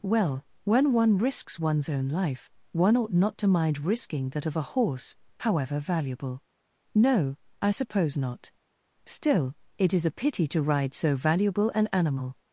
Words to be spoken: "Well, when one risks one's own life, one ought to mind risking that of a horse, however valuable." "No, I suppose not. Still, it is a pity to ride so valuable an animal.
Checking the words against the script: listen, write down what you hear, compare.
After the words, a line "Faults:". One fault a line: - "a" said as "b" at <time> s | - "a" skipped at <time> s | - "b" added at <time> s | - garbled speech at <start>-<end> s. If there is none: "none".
"Well, when one risks one's own life, one ought not to mind risking that of a horse, however valuable." "No, I suppose not. Still, it is a pity to ride so valuable an animal.
Faults:
- "not" added at 3.1 s